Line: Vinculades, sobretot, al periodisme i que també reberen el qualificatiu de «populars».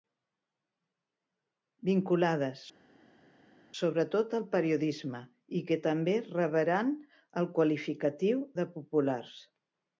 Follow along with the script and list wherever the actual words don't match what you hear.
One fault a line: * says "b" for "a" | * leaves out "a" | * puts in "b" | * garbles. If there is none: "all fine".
all fine